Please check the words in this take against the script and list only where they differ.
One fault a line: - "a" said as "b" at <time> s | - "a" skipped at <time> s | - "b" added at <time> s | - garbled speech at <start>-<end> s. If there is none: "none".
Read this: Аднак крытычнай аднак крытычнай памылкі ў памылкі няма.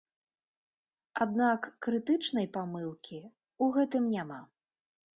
- "аднак крытычнай" skipped at 2.5 s
- "памылкі" said as "гэтым" at 3.8 s